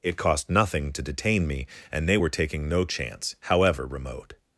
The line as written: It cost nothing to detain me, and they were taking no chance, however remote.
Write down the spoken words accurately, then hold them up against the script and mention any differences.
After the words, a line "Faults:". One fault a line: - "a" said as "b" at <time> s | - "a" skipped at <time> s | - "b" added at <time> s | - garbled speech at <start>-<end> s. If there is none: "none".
It cost nothing to detain me, and they were taking no chance, however remote.
Faults:
none